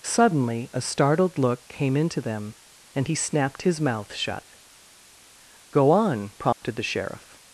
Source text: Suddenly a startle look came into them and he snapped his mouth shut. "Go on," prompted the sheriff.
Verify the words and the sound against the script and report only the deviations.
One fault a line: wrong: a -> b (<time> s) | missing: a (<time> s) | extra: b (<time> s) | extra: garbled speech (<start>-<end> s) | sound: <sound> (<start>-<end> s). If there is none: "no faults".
wrong: startle -> startled (0.8 s)
sound: dropout (6.5-6.6 s)